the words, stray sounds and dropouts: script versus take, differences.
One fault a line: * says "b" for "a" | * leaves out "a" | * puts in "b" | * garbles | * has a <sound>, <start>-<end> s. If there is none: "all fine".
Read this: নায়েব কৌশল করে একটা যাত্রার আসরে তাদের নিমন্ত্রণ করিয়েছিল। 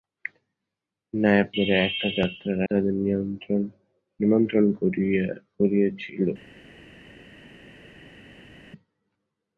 * leaves out "কৌশল"
* leaves out "আসরে"